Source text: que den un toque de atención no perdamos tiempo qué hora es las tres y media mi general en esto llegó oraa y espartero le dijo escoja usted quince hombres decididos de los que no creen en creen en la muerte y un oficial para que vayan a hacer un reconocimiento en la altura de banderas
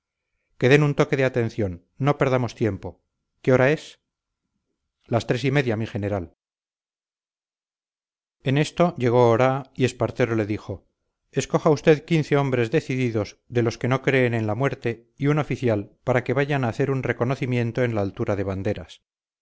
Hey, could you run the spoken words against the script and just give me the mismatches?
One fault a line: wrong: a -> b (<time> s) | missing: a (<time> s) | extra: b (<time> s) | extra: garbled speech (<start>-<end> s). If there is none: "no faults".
missing: creen en (14.5 s)